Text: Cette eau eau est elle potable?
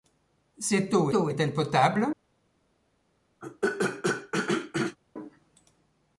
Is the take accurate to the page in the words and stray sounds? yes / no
no